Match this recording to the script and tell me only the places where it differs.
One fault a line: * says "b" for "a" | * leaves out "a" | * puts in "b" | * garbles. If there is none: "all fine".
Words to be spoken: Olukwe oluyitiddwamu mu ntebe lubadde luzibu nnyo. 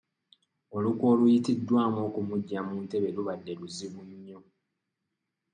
* puts in "okumuggya"